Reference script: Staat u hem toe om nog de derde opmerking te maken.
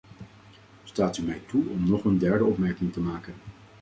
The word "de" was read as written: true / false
false